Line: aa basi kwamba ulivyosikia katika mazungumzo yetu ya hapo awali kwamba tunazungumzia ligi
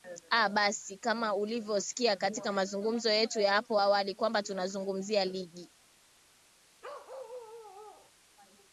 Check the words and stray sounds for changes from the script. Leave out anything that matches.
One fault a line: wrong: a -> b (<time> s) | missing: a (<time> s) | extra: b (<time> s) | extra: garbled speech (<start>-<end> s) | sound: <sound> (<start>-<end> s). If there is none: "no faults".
wrong: kwamba -> kama (1.0 s)
sound: bark (6.8-8.1 s)